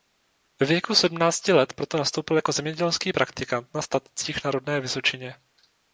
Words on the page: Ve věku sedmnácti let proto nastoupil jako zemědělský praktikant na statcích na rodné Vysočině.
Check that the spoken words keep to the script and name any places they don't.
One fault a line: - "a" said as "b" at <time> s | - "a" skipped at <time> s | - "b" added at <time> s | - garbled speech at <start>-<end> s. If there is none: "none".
none